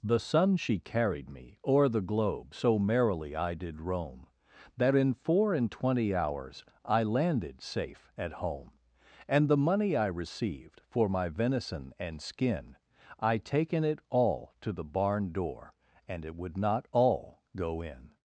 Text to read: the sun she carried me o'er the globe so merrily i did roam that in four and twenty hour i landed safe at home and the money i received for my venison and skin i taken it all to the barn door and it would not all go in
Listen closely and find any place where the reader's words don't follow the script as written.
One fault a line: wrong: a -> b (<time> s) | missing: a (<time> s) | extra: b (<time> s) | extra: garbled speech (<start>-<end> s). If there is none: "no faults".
wrong: hour -> hours (6.1 s)